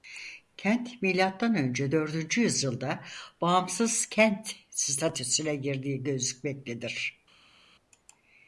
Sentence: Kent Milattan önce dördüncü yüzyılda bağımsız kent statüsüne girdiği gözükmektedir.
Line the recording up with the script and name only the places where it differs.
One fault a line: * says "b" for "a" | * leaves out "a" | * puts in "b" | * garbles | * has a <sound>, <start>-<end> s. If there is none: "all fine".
all fine